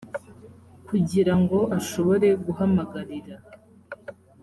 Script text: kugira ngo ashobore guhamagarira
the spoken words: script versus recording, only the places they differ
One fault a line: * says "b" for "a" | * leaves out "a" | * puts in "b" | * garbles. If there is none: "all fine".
all fine